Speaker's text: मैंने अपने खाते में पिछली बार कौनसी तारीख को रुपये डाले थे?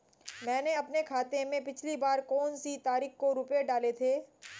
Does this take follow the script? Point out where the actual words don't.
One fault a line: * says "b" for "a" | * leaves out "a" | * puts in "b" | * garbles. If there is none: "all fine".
all fine